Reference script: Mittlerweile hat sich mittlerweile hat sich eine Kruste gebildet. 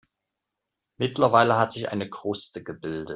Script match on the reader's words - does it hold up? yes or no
no